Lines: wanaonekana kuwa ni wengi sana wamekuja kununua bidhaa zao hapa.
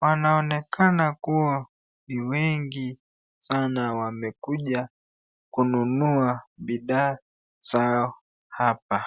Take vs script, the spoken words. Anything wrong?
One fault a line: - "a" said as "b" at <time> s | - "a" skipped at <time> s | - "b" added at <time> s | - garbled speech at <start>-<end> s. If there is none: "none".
none